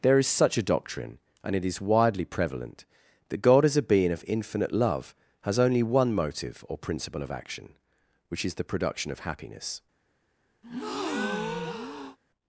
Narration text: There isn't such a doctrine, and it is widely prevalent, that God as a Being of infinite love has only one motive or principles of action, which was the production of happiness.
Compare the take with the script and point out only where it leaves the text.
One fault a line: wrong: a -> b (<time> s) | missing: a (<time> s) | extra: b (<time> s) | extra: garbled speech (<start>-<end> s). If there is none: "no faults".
wrong: isn't -> is (0.2 s)
wrong: principles -> principle (6.8 s)
wrong: was -> is (8.4 s)